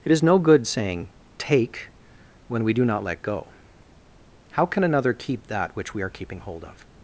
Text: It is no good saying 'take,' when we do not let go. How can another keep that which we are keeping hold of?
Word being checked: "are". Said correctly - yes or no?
yes